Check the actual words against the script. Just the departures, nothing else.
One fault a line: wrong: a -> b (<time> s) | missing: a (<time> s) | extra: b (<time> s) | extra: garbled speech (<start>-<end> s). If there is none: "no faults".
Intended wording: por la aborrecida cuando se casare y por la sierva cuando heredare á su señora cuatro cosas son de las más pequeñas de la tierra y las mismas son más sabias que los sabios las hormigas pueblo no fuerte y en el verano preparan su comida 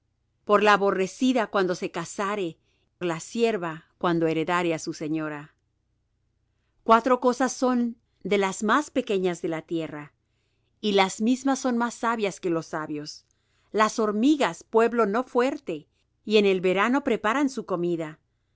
missing: y por (2.6 s)